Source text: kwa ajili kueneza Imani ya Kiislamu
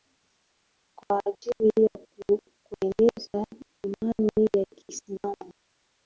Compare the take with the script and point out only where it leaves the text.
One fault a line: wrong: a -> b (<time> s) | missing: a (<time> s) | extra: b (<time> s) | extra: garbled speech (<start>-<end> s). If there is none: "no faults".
extra: ya (1.9 s)